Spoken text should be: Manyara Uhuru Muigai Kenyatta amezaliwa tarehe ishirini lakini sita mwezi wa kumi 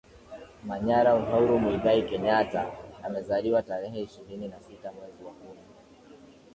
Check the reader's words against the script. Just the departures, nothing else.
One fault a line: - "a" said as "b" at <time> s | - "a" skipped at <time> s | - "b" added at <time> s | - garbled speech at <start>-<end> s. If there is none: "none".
- "lakini" said as "na" at 4.5 s